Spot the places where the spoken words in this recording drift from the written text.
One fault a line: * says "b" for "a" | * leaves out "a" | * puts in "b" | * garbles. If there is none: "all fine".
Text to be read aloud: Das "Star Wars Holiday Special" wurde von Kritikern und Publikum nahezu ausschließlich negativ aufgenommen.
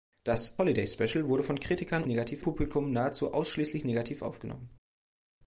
* leaves out "Star Wars"
* says "negativ" for "und"